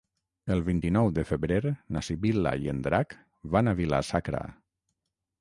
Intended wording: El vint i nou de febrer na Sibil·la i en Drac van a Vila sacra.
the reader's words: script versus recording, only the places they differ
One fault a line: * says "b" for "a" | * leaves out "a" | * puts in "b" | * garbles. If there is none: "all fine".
all fine